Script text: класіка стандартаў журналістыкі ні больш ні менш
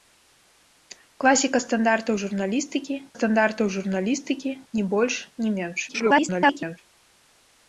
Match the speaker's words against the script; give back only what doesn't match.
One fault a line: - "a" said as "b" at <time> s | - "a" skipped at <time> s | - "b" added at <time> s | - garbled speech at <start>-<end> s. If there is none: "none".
- "стандартаў журналістыкі" added at 3.2 s
- garbled speech at 5.9-6.8 s